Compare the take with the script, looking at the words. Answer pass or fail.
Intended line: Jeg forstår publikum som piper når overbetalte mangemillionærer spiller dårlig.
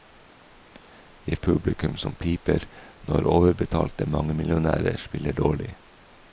fail